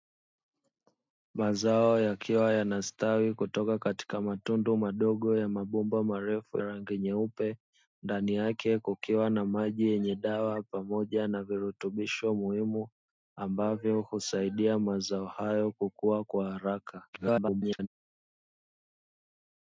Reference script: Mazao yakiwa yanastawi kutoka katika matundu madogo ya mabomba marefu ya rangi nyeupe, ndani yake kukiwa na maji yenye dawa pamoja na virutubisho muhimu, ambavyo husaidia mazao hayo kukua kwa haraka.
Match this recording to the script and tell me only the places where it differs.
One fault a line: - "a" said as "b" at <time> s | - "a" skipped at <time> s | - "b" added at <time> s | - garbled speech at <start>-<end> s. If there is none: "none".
- "ya" skipped at 6.6 s
- garbled speech at 17.1-17.9 s